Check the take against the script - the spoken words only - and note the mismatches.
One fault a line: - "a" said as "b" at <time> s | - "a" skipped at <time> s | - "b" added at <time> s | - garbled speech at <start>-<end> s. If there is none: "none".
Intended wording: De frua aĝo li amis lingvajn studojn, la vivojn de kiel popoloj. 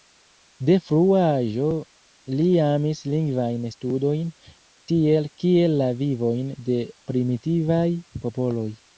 - "tiel kiel" added at 4.9 s
- "kiel" said as "primitivaj" at 7.1 s